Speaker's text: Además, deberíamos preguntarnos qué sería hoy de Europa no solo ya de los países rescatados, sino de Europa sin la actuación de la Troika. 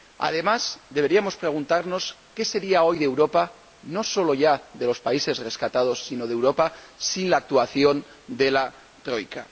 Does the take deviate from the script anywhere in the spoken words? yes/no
no